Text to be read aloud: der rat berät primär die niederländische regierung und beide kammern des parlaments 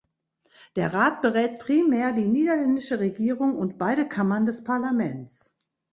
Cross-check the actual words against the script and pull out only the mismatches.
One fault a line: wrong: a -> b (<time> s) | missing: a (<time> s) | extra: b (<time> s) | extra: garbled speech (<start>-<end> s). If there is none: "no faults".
no faults